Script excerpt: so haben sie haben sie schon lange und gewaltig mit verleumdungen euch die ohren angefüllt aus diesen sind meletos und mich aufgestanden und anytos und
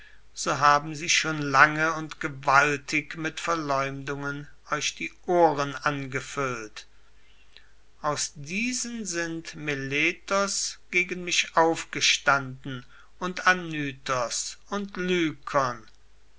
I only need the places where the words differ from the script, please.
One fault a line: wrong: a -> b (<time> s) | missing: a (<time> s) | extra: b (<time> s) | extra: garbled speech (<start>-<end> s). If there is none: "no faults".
missing: haben sie (1.1 s)
wrong: und -> gegen (10.9 s)